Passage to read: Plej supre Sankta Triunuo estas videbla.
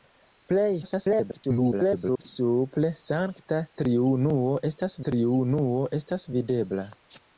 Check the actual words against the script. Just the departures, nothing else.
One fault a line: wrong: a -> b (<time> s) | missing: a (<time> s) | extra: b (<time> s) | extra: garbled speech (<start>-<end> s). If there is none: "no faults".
extra: garbled speech (0.8-2.3 s)
extra: Triunuo estas (5.1 s)